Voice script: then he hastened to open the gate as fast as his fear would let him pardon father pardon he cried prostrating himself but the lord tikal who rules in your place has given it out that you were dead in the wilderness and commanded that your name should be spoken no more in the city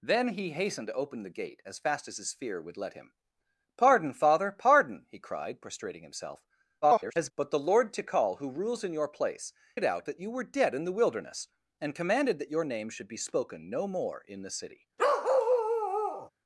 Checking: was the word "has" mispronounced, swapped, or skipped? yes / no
yes